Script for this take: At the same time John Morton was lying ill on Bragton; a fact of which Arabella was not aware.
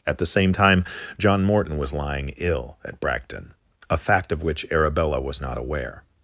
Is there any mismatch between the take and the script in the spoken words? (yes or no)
yes